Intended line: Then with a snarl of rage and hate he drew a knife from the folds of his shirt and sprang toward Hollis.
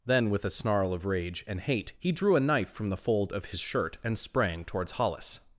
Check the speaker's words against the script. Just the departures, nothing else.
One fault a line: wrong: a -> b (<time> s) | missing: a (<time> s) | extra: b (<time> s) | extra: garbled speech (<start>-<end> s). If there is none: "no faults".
wrong: folds -> fold (3.0 s)
wrong: toward -> towards (4.7 s)